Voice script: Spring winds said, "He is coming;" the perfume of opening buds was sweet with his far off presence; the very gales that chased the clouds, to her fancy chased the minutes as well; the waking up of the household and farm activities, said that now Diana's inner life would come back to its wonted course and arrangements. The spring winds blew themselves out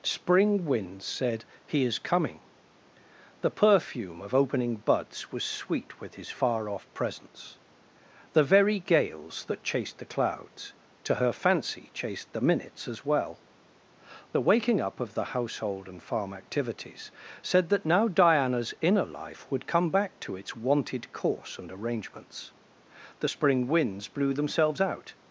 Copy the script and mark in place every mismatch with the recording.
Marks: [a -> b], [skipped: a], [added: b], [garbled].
Spring winds said, "He is coming;" the perfume of opening buds was sweet with his far off presence; the very gales that chased the clouds, to her fancy chased the minutes as well; the waking up of the household and farm activities, said that now Diana's inner life would come back to its wonted course and arrangements. The spring winds blew themselves out